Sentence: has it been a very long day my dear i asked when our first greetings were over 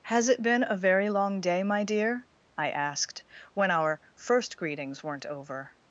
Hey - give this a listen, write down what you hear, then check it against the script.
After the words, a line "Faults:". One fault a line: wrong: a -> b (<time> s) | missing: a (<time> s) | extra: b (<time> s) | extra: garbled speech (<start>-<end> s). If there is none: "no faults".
has it been a very long day my dear i asked when our first greetings weren't over
Faults:
wrong: were -> weren't (5.0 s)